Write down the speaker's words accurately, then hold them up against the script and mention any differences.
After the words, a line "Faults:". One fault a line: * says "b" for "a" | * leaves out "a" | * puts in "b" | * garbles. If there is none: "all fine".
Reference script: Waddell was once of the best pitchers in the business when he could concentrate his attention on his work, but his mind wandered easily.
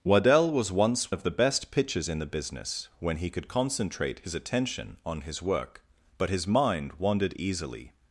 Waddell was once of the best pitchers in the business when he could concentrate his attention on his work, but his mind wandered easily.
Faults:
all fine